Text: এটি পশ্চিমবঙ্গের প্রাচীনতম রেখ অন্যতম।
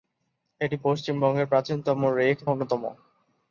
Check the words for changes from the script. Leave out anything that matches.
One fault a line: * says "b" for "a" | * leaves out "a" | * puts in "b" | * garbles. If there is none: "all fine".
all fine